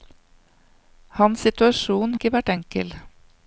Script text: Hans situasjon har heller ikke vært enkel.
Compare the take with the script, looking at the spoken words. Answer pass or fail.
fail